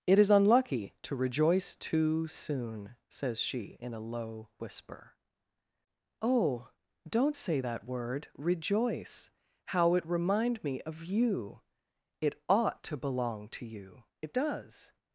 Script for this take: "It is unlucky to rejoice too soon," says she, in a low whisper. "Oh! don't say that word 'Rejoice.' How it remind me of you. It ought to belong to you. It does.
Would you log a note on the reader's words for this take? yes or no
no